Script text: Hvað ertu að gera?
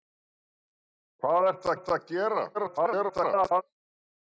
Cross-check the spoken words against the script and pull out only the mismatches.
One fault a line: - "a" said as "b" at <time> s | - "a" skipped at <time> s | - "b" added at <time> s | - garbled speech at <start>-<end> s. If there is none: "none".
- "ertu" added at 1.7 s
- garbled speech at 2.5-3.6 s